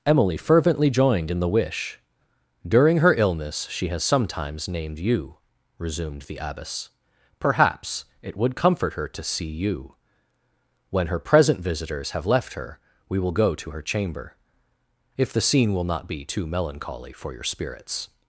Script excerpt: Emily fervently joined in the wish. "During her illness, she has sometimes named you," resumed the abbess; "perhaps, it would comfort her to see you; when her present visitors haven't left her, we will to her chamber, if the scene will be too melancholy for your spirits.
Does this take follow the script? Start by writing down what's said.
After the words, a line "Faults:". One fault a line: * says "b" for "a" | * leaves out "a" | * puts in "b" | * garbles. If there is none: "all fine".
Emily fervently joined in the wish. "During her illness, she has sometimes named you," resumed the abbess; "perhaps, it would comfort her to see you; when her present visitors have left her, we will go to her chamber, if the scene will not be too melancholy for your spirits.
Faults:
* says "have" for "haven't"
* puts in "go"
* puts in "not"